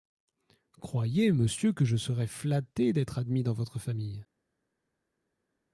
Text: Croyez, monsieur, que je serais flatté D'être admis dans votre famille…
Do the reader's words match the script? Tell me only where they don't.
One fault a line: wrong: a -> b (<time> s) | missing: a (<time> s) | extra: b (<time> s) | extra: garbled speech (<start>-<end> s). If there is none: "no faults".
no faults